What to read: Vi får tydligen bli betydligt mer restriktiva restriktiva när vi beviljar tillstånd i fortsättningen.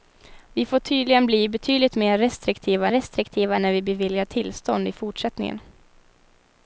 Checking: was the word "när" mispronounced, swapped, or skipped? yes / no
no